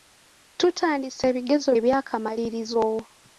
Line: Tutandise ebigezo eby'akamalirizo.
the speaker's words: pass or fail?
pass